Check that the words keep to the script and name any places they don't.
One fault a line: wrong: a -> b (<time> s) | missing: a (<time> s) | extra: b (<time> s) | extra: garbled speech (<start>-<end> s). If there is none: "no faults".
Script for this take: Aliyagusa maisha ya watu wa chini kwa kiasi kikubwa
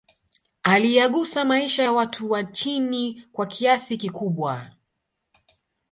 no faults